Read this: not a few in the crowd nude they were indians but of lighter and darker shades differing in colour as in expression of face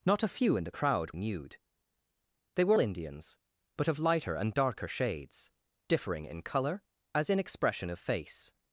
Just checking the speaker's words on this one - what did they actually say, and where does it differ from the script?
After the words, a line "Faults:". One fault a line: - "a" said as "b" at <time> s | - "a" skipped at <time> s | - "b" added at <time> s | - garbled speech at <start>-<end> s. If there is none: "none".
not a few in the crowd nude they were indians but of lighter and darker shades differing in colour as in expression of face
Faults:
none